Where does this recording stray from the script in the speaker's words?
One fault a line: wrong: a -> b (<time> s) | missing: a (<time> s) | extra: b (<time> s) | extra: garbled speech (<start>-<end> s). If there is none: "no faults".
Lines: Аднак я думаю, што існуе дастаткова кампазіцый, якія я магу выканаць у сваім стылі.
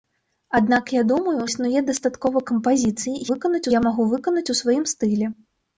missing: што (1.4 s)
wrong: якія -> выканаць (3.3 s)